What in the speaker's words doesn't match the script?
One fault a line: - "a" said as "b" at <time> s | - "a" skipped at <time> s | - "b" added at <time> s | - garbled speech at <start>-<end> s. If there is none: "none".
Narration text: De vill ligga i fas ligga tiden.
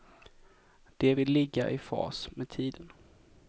- "ligga" said as "med" at 2.3 s